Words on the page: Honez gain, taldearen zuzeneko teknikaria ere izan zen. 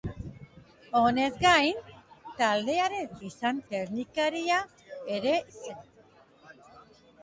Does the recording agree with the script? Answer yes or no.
no